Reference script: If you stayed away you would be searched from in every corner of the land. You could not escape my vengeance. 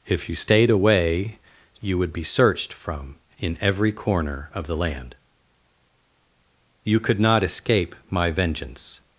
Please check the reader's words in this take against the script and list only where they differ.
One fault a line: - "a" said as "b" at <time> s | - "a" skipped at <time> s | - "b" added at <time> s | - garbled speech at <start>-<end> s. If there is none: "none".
none